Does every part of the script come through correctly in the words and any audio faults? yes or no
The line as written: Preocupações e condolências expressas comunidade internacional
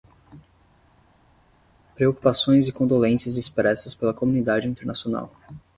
no